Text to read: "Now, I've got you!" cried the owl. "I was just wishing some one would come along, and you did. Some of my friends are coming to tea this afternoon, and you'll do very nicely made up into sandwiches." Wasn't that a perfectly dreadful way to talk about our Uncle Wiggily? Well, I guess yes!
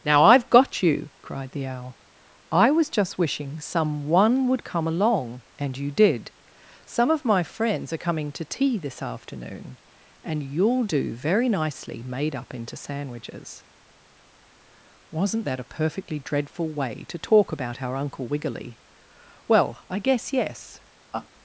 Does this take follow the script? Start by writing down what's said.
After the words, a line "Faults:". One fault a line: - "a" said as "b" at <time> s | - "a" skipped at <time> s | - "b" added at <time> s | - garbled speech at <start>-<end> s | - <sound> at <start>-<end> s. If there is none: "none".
"Now, I've got you!" cried the owl. "I was just wishing some one would come along, and you did. Some of my friends are coming to tea this afternoon, and you'll do very nicely made up into sandwiches." Wasn't that a perfectly dreadful way to talk about our Uncle Wiggily? Well, I guess yes!
Faults:
- laugh at 21.1-21.3 s